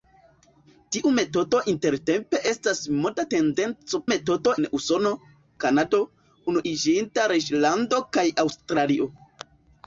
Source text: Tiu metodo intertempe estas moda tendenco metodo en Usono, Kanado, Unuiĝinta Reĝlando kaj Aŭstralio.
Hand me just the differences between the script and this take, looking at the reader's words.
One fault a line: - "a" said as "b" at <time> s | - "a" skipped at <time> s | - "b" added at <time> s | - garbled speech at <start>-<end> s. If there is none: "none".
none